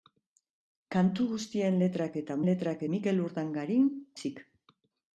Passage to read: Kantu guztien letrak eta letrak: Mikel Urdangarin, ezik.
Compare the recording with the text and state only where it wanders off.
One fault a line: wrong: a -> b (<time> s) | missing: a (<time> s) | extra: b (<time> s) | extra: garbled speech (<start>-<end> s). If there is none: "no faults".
no faults